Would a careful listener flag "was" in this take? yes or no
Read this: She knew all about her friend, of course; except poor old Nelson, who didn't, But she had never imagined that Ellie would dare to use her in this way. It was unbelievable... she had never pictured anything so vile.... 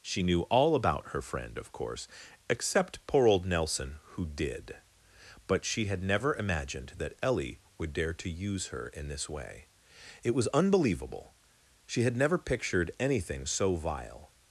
no